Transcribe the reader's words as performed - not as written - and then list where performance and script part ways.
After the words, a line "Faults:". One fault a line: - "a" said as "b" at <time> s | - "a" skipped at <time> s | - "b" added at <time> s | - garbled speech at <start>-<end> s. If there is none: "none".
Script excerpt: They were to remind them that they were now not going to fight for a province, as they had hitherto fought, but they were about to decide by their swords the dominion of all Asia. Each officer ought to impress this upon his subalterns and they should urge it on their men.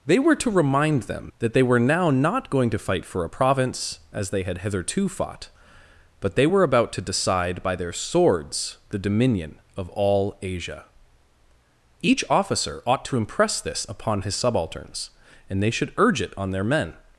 They were to remind them that they were now not going to fight for a province, as they had hitherto fought, but they were about to decide by their swords the dominion of all Asia. Each officer ought to impress this upon his subalterns and they should urge it on their men.
Faults:
none